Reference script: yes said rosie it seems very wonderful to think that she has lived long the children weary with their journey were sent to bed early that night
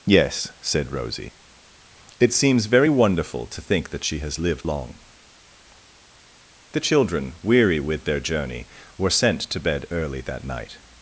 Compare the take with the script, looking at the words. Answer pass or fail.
pass